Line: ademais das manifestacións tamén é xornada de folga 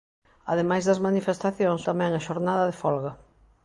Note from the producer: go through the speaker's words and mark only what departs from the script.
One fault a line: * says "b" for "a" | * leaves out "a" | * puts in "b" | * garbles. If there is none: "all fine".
all fine